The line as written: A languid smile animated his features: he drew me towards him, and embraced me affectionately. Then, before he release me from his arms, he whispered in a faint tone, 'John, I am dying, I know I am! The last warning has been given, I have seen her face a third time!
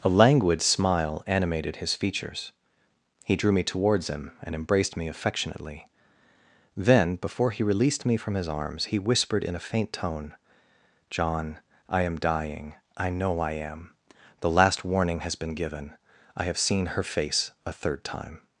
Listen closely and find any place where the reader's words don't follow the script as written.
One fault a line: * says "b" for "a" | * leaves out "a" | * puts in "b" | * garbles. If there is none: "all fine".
* says "released" for "release"